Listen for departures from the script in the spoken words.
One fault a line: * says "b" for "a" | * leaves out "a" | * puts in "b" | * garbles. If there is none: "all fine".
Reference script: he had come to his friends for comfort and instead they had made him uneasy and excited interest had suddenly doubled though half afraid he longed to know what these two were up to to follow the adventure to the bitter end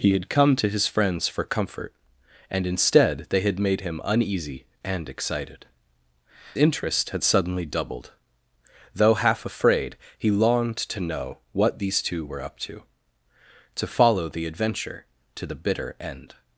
all fine